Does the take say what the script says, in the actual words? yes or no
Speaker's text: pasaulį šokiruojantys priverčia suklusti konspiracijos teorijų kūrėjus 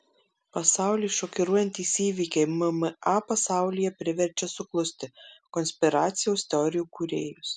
no